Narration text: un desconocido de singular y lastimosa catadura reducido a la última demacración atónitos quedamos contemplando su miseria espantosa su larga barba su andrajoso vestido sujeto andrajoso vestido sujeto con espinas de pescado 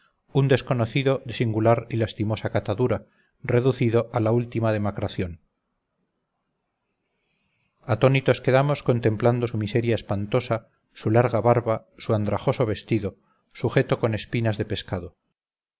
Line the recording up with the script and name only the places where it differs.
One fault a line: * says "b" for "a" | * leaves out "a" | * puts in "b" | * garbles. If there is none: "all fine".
* leaves out "andrajoso vestido sujeto"